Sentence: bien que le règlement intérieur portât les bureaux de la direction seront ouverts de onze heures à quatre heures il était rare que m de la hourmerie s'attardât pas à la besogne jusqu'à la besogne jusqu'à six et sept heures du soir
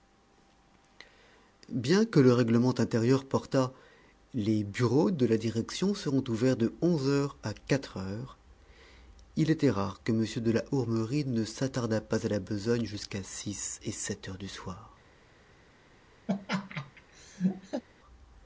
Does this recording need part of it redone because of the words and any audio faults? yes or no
yes